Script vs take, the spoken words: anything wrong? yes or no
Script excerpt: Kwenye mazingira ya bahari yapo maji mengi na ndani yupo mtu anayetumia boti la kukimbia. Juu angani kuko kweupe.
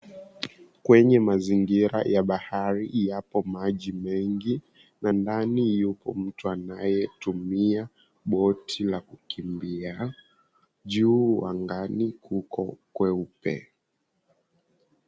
no